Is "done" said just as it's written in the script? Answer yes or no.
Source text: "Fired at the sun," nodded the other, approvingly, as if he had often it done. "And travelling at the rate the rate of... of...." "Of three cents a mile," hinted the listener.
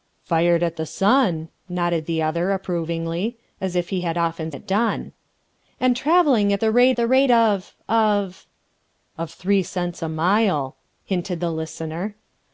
yes